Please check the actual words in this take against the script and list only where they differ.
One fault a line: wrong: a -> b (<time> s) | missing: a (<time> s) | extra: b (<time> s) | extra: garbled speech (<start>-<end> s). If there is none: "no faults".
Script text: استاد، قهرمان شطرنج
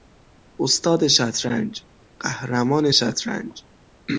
extra: شطرنج (1.1 s)